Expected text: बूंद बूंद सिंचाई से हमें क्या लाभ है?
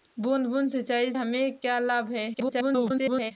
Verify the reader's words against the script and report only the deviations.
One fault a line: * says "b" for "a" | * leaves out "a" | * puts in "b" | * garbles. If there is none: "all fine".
* leaves out "से"
* garbles